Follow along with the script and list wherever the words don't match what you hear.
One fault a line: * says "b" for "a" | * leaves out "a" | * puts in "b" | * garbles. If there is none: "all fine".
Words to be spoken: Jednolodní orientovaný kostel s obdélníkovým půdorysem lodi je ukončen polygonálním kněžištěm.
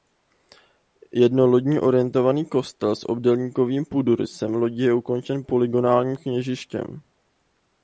all fine